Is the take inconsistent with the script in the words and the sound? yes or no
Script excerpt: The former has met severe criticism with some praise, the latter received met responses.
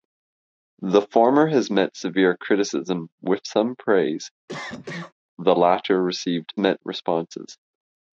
yes